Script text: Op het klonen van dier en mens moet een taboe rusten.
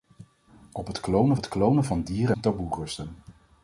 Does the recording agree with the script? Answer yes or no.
no